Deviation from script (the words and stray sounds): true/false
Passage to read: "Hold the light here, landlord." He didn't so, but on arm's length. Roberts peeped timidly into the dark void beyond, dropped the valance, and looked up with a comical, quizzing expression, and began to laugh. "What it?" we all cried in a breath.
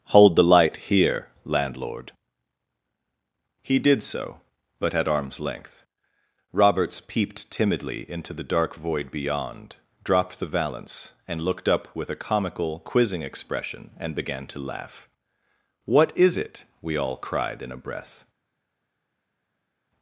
true